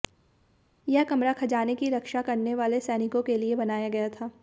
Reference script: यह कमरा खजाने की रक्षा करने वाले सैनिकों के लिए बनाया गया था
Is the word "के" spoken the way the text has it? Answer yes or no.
yes